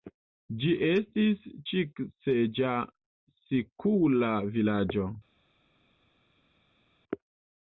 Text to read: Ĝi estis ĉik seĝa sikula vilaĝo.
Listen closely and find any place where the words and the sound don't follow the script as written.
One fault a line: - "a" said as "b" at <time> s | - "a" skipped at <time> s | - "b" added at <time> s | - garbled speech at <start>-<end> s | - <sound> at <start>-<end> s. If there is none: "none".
none